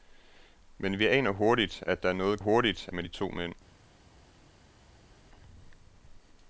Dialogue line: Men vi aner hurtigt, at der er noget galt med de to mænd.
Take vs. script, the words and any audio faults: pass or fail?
fail